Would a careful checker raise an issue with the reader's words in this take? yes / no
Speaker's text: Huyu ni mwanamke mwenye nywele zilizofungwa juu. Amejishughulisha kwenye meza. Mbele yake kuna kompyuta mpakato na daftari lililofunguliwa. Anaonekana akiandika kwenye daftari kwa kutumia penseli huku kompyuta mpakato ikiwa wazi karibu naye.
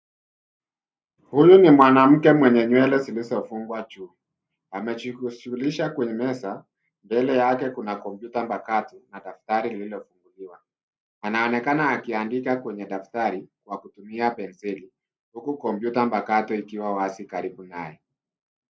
no